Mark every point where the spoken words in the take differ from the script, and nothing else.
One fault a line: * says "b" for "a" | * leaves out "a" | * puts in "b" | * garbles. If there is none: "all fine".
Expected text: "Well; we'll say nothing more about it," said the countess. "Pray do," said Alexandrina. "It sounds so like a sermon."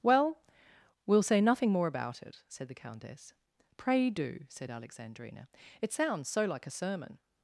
all fine